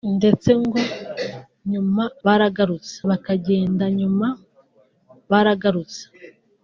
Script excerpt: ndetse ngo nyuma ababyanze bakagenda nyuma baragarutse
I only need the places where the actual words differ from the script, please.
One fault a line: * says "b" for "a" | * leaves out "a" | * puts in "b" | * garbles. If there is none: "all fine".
* says "baragarutse" for "ababyanze"